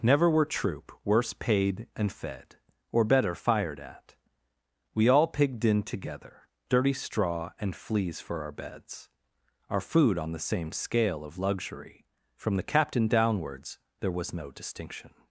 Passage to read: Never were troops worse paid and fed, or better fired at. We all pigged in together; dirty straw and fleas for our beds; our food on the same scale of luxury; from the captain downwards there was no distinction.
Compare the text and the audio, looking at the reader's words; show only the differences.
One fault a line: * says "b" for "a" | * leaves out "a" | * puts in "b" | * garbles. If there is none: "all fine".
* says "troop" for "troops"